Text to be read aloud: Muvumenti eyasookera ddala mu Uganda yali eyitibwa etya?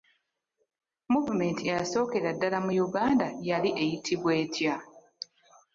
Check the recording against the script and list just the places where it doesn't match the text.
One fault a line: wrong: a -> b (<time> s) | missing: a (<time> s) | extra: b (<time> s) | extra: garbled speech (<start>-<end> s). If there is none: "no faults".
no faults